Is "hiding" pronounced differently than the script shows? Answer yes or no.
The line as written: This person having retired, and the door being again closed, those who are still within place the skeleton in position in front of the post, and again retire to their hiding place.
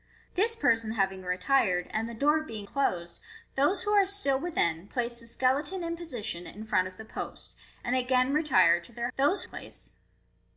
yes